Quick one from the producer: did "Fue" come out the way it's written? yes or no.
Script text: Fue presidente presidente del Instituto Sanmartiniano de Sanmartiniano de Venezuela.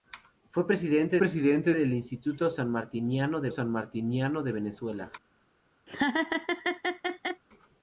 yes